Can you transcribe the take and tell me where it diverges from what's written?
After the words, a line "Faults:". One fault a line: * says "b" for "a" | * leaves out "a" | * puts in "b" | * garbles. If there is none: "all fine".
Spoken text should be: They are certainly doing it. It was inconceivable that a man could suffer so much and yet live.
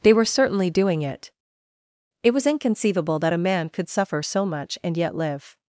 They were certainly doing it. It was inconceivable that a man could suffer so much and yet live.
Faults:
* says "were" for "are"